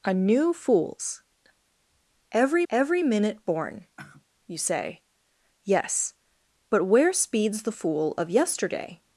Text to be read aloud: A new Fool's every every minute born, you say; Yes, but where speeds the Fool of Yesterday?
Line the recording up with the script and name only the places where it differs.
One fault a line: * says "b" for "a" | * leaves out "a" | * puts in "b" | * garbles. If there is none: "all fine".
all fine